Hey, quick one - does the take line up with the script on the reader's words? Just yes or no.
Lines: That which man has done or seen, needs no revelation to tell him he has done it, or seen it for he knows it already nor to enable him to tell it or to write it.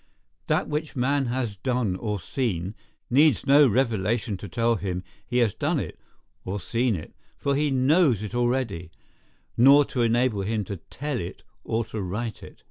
yes